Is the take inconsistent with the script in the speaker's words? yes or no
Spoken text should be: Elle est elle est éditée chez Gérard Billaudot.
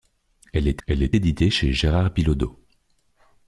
no